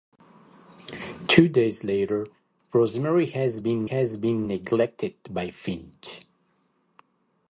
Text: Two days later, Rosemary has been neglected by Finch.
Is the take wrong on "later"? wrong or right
right